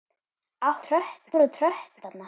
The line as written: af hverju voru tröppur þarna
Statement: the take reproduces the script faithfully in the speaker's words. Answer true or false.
false